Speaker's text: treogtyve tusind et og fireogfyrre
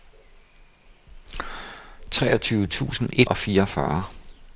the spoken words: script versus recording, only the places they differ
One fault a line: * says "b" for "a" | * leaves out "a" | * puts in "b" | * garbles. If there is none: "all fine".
all fine